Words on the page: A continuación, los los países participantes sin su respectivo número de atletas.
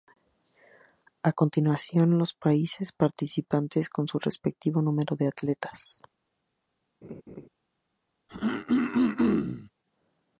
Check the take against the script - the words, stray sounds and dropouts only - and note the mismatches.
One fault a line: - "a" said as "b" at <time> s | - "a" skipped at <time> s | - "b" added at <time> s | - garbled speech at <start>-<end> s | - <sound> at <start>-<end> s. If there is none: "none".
- "los" skipped at 2.3 s
- "sin" said as "con" at 3.9 s
- laugh at 7.0-7.5 s
- throat clearing at 8.3-9.7 s